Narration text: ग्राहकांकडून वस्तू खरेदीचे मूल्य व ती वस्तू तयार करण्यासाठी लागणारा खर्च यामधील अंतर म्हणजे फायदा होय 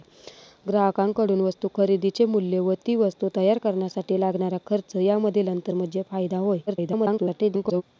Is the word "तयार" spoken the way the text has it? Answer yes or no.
yes